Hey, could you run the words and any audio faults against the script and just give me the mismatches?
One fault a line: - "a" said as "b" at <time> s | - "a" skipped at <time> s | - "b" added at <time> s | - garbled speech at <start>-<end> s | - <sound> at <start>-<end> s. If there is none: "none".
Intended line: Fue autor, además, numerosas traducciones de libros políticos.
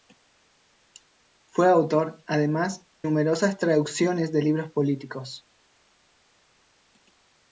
none